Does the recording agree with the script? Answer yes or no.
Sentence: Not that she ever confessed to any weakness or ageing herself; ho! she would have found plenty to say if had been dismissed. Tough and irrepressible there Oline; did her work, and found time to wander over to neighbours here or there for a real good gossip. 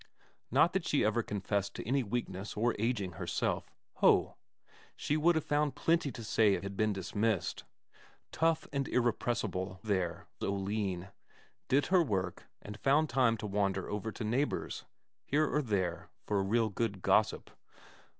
yes